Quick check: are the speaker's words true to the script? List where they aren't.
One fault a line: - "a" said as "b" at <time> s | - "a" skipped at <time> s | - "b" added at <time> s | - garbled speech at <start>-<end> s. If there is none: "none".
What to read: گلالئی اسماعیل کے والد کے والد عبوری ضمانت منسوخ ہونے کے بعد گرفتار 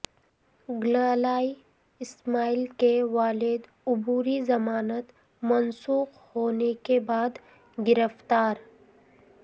- "کے والد" skipped at 3.6 s